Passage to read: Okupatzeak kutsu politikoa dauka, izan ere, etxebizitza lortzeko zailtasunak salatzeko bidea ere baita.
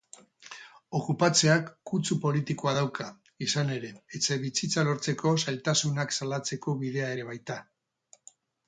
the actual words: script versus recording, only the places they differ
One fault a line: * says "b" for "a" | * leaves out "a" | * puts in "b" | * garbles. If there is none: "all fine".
all fine